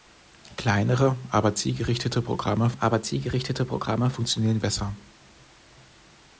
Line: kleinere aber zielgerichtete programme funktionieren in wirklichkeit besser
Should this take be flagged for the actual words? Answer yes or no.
yes